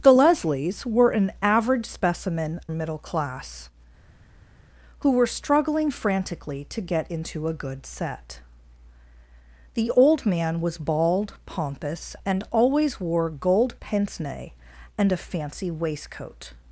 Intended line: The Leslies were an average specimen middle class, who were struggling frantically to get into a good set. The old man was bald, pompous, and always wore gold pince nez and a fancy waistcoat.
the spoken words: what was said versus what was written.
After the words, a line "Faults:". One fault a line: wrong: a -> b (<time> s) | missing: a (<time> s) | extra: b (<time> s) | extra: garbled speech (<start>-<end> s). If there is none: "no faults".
The Leslies were an average specimen middle class, who were struggling frantically to get into a good set. The old man was bald, pompous, and always wore gold pince nez and a fancy waistcoat.
Faults:
no faults